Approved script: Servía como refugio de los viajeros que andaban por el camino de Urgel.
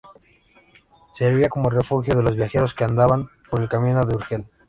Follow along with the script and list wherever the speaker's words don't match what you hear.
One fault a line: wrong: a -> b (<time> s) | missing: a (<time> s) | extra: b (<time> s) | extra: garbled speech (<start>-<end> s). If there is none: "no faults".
no faults